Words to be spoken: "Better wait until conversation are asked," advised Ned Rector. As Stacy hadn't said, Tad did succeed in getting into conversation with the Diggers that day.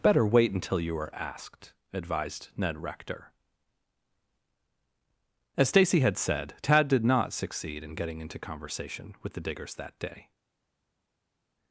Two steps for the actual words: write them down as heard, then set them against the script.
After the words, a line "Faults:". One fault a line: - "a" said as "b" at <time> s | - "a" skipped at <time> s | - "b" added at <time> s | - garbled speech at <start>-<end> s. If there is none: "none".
"Better wait until you are asked," advised Ned Rector. As Stacy had said, Tad did not succeed in getting into conversation with the Diggers that day.
Faults:
- "conversation" said as "you" at 0.8 s
- "hadn't" said as "had" at 6.0 s
- "not" added at 7.0 s